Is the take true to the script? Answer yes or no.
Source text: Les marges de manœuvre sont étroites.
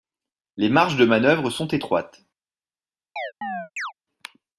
yes